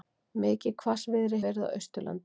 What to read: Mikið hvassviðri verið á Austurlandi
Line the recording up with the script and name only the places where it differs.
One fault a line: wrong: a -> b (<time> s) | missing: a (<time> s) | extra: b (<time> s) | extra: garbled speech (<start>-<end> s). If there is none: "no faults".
no faults